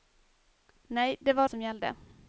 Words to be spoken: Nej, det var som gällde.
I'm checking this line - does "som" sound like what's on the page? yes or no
yes